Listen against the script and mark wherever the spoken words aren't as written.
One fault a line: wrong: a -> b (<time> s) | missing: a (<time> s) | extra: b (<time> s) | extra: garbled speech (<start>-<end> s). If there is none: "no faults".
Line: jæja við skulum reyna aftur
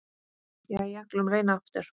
missing: við (1.1 s)